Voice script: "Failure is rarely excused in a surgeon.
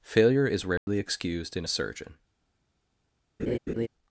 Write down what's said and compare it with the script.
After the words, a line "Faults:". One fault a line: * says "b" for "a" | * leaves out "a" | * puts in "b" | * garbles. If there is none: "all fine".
"Failure is rarely excused in a surgeon.
Faults:
all fine